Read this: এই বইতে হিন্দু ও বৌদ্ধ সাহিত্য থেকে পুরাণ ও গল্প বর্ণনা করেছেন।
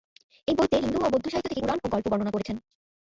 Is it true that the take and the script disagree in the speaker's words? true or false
false